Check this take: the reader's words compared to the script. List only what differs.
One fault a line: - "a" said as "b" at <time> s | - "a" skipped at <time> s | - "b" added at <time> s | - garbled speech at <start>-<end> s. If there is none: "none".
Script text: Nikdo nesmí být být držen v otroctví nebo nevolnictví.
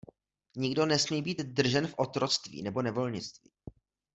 - "být" skipped at 1.4 s